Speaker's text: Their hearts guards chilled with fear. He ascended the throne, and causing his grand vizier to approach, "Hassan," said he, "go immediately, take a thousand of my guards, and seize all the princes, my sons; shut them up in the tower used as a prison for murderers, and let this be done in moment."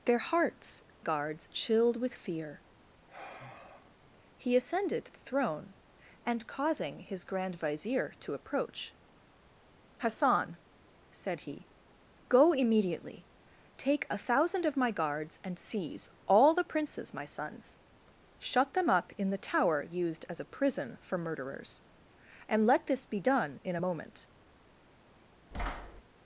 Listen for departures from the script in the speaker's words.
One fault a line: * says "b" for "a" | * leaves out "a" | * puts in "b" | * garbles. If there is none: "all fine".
all fine